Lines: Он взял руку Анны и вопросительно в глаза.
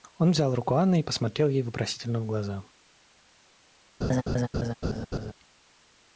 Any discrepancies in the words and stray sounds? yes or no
yes